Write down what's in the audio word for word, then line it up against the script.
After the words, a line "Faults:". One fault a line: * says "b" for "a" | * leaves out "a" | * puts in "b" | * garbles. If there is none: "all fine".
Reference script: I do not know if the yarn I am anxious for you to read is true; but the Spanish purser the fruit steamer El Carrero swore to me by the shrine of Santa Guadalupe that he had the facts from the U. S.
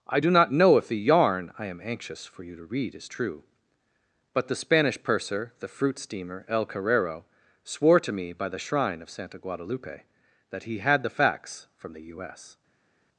I do not know if the yarn I am anxious for you to read is true; but the Spanish purser the fruit steamer El Carrero swore to me by the shrine of Santa Guadalupe that he had the facts from the U. S.
Faults:
all fine